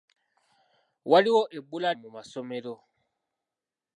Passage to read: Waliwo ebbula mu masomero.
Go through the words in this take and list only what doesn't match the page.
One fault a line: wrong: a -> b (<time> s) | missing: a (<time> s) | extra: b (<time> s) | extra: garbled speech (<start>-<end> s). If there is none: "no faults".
no faults